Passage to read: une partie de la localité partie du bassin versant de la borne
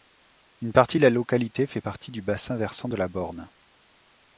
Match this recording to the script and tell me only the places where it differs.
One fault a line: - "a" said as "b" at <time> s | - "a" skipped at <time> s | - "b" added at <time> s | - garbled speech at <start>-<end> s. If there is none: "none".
- "fait" added at 1.7 s